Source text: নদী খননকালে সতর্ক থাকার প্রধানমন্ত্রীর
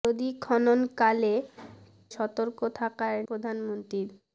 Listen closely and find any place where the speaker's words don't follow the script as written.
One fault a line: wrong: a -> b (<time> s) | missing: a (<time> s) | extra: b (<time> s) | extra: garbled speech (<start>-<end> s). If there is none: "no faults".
no faults